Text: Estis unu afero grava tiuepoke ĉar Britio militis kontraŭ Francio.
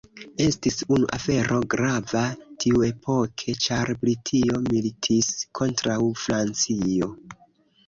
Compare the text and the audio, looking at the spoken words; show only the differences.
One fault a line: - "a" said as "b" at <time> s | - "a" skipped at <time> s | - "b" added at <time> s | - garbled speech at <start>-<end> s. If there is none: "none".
none